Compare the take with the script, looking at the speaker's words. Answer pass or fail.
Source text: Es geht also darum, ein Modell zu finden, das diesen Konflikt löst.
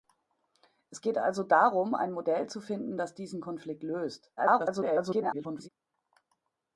fail